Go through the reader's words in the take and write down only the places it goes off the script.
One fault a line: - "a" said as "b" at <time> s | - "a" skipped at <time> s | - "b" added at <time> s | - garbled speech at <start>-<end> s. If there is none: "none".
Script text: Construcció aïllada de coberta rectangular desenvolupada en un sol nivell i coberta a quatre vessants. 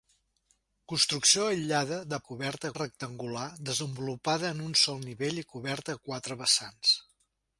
none